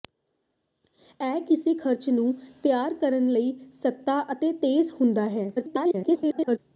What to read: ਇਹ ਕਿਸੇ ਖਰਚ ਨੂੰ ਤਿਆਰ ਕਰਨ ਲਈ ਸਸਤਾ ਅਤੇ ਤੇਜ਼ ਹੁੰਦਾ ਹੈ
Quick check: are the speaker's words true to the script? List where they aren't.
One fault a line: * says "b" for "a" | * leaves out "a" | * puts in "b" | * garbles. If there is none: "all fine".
* garbles